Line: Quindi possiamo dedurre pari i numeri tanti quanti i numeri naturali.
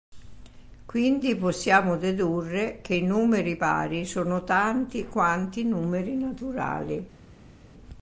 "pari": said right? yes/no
no